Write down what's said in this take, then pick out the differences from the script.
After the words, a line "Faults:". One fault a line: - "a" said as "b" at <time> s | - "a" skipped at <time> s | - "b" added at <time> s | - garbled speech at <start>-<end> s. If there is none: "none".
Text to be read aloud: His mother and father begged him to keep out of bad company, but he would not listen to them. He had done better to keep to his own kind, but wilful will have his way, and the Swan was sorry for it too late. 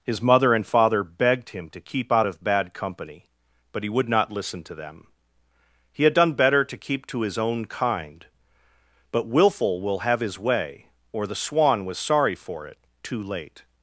His mother and father begged him to keep out of bad company, but he would not listen to them. He had done better to keep to his own kind, but wilful will have his way, or the Swan was sorry for it too late.
Faults:
- "and" said as "or" at 11.1 s